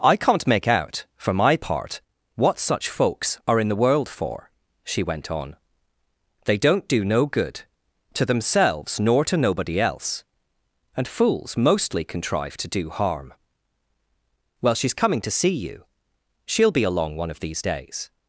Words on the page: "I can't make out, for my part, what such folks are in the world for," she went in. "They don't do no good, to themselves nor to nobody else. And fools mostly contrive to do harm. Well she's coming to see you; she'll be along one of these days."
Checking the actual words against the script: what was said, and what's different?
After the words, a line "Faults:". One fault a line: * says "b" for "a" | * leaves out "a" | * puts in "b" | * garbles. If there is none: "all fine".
"I can't make out, for my part, what such folks are in the world for," she went on. "They don't do no good, to themselves nor to nobody else. And fools mostly contrive to do harm. Well she's coming to see you; she'll be along one of these days."
Faults:
* says "on" for "in"